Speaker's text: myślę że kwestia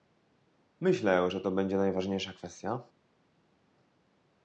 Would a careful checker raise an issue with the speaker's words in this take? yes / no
yes